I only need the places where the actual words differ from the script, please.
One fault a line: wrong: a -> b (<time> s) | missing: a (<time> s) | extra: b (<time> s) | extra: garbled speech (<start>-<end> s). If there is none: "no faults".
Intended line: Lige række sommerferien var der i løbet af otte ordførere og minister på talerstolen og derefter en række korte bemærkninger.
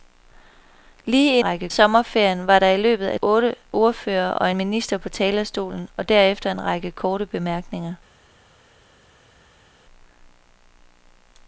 no faults